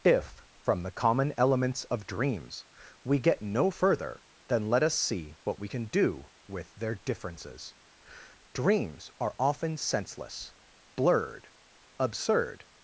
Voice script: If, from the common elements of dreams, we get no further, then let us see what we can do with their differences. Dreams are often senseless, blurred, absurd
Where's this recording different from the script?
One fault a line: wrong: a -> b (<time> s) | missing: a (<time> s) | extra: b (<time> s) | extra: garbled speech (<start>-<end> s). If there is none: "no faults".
no faults